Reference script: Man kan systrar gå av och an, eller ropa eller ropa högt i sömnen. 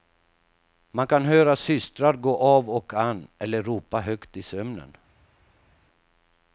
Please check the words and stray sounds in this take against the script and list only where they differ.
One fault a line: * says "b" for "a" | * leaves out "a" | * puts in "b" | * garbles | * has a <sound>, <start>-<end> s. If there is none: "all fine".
* puts in "höra"
* leaves out "eller ropa"